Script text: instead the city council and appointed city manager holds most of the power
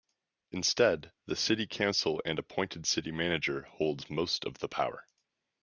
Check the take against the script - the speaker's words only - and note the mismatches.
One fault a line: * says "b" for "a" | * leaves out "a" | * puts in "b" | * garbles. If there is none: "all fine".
all fine